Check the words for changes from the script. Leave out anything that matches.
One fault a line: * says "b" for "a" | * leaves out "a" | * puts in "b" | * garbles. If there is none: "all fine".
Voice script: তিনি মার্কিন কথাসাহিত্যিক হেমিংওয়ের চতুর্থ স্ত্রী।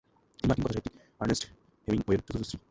* puts in "আর্নেস্ট"